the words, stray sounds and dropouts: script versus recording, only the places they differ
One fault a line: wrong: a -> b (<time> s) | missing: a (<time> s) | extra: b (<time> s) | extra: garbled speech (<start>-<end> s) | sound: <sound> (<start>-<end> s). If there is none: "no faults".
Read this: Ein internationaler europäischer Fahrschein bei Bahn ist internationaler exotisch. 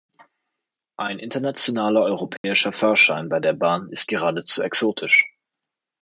sound: dropout (2.4-2.4 s)
extra: der (3.4 s)
wrong: internationaler -> geradezu (4.1 s)